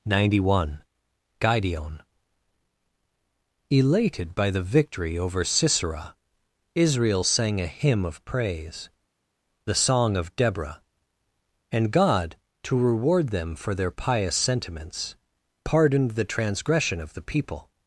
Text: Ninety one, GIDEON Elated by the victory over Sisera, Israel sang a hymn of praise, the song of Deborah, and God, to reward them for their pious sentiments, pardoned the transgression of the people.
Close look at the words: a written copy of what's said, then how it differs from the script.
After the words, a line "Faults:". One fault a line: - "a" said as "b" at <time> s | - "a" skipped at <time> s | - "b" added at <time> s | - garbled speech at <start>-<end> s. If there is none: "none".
Ninety one, GIDEON Elated by the victory over Sisera, Israel sang a hymn of praise, the song of Deborah, and God, to reward them for their pious sentiments, pardoned the transgression of the people.
Faults:
none